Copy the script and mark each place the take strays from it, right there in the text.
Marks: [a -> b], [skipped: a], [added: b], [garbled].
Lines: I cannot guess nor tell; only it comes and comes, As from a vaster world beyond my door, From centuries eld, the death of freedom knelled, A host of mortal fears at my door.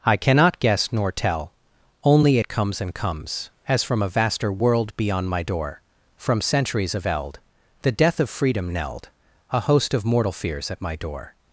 I cannot guess nor tell; only it comes and comes, As from a vaster world beyond my door, From centuries [added: of] eld, the death of freedom knelled, A host of mortal fears at my door.